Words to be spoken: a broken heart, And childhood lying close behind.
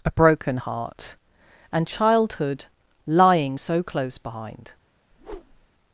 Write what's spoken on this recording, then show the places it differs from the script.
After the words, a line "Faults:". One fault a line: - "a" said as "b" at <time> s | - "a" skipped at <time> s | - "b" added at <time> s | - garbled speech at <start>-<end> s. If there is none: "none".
a broken heart, And childhood lying so close behind.
Faults:
- "so" added at 3.5 s